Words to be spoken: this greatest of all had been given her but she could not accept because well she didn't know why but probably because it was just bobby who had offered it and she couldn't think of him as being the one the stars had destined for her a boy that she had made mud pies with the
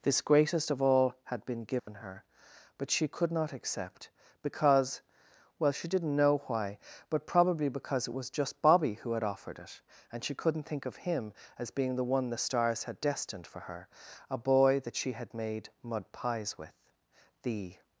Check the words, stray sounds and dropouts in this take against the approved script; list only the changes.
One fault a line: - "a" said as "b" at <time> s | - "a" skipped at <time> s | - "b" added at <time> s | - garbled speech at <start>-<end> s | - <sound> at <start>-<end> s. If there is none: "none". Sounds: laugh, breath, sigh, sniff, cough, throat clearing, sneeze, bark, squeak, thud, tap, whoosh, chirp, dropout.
- dropout at 1.8-1.9 s